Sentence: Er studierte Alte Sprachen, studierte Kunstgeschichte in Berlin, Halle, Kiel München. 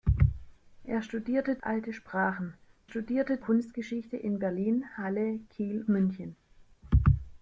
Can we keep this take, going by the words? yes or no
yes